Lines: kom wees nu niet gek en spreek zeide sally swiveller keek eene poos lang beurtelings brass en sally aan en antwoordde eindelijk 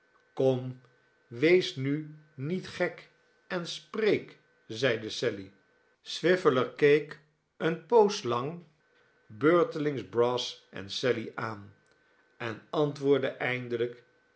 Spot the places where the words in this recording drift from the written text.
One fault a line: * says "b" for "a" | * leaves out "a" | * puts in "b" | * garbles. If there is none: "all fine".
all fine